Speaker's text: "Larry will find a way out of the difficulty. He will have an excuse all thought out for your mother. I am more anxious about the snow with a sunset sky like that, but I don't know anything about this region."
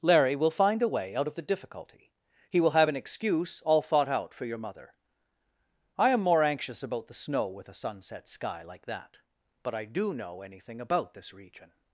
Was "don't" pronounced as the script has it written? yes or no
no